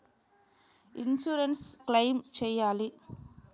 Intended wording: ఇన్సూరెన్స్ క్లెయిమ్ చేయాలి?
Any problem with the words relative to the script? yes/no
no